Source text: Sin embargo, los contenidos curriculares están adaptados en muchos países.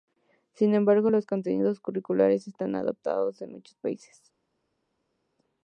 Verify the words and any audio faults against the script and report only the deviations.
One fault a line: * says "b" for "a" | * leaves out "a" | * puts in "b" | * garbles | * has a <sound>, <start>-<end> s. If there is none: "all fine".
all fine